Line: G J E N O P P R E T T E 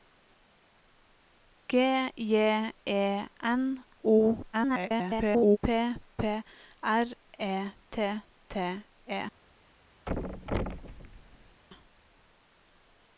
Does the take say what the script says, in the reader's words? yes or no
no